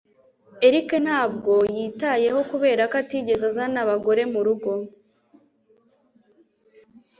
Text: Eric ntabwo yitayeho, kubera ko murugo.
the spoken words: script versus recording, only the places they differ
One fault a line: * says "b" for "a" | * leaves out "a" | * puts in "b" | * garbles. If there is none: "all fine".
* puts in "atigeze azana abagore"